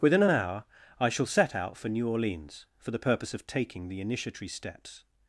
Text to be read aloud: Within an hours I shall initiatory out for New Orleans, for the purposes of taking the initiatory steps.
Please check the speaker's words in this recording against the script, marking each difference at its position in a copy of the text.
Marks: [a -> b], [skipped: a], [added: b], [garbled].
Within an [hours -> hour] I shall [initiatory -> set] out for New Orleans, for the [purposes -> purpose] of taking the initiatory steps.